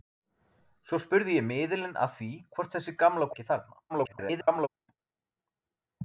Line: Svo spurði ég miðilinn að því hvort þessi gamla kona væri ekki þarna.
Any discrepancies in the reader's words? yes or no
yes